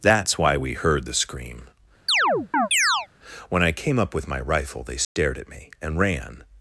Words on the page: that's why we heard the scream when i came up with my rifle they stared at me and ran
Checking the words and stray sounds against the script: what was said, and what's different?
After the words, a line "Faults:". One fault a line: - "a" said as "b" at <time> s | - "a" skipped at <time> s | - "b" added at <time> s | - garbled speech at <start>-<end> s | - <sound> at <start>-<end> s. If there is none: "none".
that's why we heard the scream when i came up with my rifle they stared at me and ran
Faults:
- chirp at 2.1-3.1 s
- dropout at 5.0-5.2 s